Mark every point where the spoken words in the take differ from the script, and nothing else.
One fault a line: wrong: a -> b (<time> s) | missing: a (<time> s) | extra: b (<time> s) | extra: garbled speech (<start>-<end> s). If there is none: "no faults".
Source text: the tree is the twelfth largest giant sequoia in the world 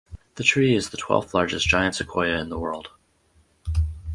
no faults